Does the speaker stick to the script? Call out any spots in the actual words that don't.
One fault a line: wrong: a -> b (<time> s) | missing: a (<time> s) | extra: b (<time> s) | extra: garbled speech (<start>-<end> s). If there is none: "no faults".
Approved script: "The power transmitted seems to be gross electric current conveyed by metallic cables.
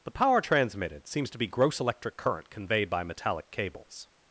no faults